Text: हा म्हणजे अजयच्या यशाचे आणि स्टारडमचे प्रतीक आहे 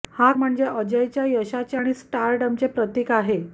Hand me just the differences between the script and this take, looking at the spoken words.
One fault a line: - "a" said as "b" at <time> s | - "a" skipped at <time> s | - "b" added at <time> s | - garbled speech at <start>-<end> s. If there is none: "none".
none